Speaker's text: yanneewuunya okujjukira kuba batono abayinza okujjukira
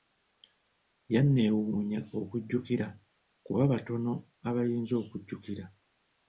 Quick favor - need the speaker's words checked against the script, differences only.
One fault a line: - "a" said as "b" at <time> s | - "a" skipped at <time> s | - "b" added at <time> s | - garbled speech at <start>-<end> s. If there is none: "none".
none